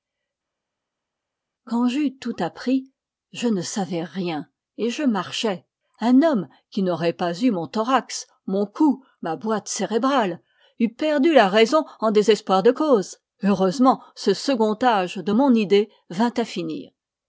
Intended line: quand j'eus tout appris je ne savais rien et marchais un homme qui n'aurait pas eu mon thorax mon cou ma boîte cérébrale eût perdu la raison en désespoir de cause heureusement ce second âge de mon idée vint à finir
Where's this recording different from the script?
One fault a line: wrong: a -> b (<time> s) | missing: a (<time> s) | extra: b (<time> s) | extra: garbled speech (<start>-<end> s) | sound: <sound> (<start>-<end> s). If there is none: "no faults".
extra: je (4.9 s)